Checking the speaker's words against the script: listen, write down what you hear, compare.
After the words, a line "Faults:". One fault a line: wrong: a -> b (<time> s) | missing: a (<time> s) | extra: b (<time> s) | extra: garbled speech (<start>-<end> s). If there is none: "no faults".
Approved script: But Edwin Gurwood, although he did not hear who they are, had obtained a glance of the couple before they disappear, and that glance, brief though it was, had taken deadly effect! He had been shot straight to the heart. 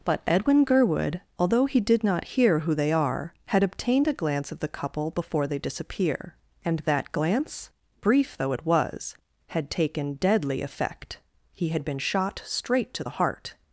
But Edwin Gurwood, although he did not hear who they are, had obtained a glance of the couple before they disappear, and that glance, brief though it was, had taken deadly effect! He had been shot straight to the heart.
Faults:
no faults